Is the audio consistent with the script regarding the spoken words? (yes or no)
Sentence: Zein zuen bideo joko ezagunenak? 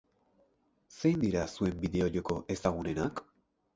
no